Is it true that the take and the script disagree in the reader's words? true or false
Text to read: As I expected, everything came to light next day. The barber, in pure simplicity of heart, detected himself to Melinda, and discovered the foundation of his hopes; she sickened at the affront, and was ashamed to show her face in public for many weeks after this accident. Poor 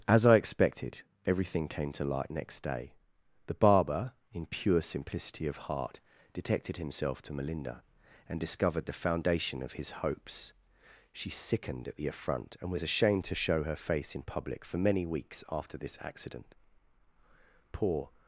false